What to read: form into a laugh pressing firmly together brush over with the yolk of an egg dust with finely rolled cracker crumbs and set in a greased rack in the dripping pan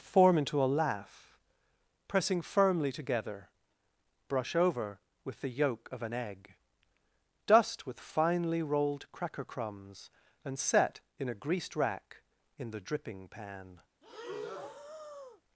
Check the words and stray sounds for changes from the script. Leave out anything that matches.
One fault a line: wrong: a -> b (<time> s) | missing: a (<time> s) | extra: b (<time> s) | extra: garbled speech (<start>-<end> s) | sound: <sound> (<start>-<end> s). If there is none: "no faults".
sound: breath (14.0-15.4 s)